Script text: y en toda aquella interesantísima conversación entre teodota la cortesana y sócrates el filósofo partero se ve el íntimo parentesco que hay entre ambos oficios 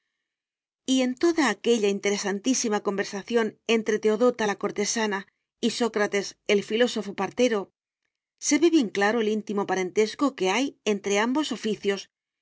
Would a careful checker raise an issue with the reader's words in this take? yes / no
yes